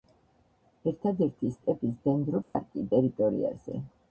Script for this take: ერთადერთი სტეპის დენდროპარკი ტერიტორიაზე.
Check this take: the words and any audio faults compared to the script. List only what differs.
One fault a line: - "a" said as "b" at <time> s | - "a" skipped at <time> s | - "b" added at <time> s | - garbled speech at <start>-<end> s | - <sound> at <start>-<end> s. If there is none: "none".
- dropout at 2.4-2.5 s